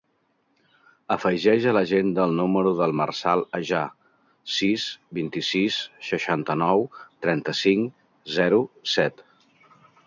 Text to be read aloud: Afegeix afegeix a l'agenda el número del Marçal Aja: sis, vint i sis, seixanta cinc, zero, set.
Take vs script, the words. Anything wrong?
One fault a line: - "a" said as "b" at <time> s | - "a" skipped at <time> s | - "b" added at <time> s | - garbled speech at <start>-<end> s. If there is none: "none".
- "afegeix" skipped at 1.7 s
- "nou trenta" added at 6.7 s